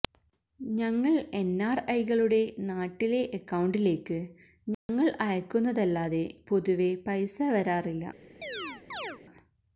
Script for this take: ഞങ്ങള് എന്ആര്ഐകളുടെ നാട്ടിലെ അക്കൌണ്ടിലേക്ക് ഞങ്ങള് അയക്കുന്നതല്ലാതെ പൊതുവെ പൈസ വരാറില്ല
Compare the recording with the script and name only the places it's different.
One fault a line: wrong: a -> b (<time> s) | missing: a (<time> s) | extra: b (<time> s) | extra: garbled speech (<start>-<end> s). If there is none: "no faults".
no faults